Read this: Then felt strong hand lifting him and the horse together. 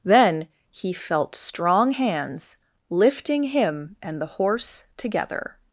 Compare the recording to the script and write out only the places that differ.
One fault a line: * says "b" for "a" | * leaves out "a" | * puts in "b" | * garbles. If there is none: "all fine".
* puts in "he"
* says "hands" for "hand"